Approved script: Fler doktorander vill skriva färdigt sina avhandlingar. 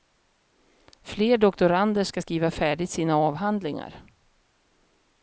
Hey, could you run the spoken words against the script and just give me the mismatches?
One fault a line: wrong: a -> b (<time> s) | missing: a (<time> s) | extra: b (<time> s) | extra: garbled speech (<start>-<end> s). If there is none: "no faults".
wrong: vill -> ska (2.0 s)